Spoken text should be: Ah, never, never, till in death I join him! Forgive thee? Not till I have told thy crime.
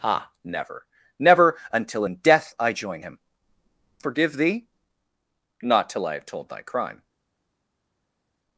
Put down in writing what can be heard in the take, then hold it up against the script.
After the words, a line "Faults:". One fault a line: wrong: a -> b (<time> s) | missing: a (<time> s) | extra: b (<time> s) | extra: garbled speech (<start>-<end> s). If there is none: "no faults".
Ah, never, never, until in death I join him! Forgive thee? Not till I have told thy crime.
Faults:
wrong: till -> until (1.7 s)